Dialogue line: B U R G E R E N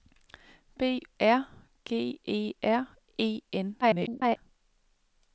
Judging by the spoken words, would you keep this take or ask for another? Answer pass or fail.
fail